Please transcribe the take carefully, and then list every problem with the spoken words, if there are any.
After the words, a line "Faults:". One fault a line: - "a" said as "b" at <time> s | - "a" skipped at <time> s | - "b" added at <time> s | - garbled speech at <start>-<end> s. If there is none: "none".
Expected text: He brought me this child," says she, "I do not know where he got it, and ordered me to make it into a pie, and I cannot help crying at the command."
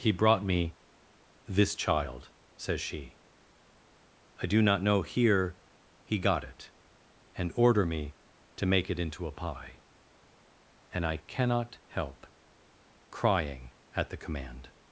He brought me this child," says she, "I do not know here he got it, and order me to make it into a pie, and I cannot help crying at the command."
Faults:
- "where" said as "here" at 5.0 s
- "ordered" said as "order" at 7.5 s